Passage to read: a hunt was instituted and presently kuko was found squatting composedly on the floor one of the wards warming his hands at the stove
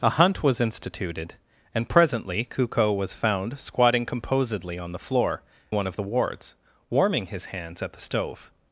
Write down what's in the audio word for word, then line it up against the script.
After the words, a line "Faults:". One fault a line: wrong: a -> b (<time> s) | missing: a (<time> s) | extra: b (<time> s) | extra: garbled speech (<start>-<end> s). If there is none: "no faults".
a hunt was instituted and presently kuko was found squatting composedly on the floor one of the wards warming his hands at the stove
Faults:
no faults